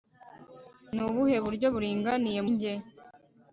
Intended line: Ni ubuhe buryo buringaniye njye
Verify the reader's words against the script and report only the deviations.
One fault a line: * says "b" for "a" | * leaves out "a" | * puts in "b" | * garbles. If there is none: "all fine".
all fine